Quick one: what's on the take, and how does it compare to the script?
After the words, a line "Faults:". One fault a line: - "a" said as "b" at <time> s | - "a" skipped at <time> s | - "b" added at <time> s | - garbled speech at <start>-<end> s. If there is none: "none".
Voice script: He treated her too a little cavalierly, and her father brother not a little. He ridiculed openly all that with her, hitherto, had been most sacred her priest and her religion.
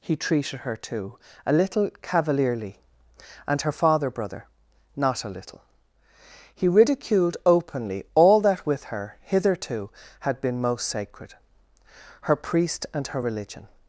He treated her too a little cavalierly, and her father brother not a little. He ridiculed openly all that with her, hitherto, had been most sacred her priest and her religion.
Faults:
none